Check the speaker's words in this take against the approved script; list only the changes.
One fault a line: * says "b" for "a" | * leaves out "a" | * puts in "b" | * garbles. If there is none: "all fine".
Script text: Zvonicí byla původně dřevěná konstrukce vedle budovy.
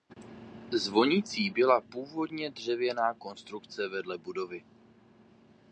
all fine